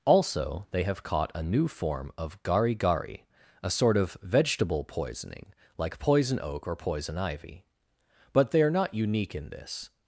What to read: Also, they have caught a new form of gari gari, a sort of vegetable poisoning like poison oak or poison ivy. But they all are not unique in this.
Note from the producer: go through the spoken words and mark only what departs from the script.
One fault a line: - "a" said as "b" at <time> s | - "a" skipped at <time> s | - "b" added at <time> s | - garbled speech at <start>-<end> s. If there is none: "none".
- "all" skipped at 8.6 s